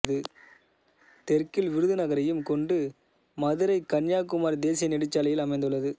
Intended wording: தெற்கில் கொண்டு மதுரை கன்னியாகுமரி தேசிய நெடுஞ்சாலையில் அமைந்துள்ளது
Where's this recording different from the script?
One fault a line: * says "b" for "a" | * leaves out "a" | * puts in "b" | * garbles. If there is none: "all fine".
* puts in "விருதுநகரையும்"